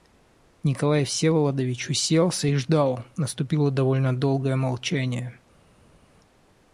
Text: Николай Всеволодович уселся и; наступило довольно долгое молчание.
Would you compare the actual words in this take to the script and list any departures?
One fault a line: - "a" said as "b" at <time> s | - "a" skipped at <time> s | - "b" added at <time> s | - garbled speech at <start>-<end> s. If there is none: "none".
- "ждал" added at 2.6 s